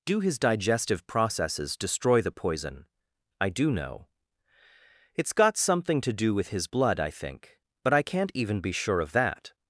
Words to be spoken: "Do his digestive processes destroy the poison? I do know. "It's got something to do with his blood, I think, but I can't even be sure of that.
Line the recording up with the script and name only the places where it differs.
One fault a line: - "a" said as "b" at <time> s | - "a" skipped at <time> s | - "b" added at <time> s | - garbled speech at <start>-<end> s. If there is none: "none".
none